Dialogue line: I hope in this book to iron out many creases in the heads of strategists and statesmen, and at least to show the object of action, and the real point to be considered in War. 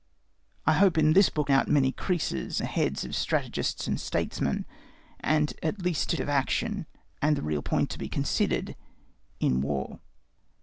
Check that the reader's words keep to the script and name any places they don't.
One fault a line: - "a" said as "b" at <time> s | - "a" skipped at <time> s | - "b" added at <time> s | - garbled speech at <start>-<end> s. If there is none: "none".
- "to iron" skipped at 1.5 s
- "in" skipped at 2.6 s
- "show the object" skipped at 6.2 s